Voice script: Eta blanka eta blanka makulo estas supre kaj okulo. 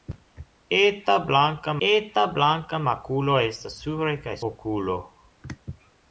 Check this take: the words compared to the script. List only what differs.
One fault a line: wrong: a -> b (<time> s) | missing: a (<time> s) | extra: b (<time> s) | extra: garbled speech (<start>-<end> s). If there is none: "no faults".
no faults